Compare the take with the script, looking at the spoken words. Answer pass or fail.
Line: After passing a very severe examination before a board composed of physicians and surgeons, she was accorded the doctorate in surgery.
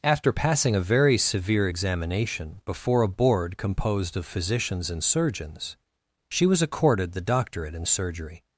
pass